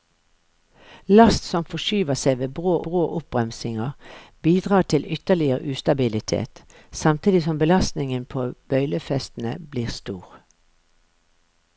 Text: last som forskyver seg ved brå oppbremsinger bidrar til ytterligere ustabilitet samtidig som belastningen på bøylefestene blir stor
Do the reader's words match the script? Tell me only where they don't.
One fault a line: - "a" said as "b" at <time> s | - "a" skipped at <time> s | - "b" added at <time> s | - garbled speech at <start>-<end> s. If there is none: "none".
- "brå" added at 2.9 s